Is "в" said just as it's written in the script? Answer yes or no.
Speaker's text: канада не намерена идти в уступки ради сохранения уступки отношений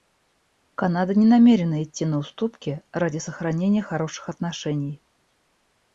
no